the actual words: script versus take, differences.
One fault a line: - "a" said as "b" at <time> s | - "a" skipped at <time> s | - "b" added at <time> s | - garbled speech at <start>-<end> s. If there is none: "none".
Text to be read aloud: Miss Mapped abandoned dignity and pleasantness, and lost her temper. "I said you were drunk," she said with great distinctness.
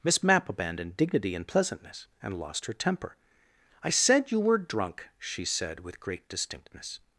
- "Mapped" said as "Mapp" at 0.2 s